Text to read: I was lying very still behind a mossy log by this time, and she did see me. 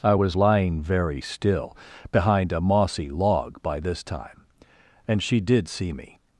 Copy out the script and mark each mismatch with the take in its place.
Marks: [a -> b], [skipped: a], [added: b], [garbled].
I was lying very still behind a mossy log by this time, and she did see me.